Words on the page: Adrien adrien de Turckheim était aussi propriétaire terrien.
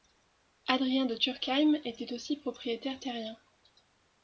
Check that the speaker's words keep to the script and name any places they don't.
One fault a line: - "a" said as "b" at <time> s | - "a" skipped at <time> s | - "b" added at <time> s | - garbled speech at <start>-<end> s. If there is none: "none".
- "adrien" skipped at 1.1 s